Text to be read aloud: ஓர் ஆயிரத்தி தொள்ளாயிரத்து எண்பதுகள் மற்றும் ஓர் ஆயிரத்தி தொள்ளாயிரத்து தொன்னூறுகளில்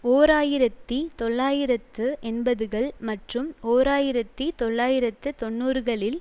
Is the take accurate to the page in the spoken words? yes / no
yes